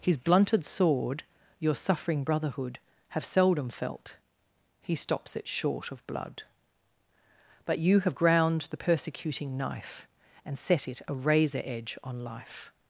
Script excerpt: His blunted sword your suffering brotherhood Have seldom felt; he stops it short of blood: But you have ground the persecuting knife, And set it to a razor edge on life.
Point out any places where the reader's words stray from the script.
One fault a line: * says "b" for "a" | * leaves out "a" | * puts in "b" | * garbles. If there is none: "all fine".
* leaves out "to"